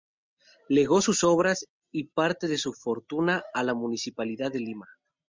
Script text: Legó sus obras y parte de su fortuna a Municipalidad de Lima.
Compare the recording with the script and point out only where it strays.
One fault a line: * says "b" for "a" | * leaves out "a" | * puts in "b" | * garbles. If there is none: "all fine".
* puts in "la"